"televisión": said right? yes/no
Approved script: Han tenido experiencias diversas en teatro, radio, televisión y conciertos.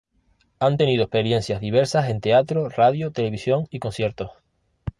yes